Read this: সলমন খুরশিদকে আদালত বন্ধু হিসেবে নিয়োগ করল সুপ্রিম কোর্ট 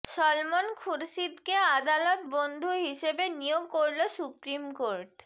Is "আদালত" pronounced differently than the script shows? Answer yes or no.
no